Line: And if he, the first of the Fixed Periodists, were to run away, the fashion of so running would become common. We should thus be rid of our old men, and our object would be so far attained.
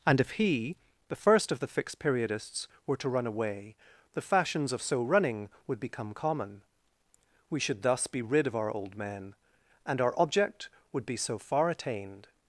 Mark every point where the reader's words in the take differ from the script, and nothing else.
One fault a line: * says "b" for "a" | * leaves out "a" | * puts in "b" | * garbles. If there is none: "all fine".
* says "fashions" for "fashion"